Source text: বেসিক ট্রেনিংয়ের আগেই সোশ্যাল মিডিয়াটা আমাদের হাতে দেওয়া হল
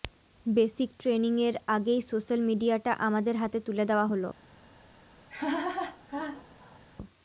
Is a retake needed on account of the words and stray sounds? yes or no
yes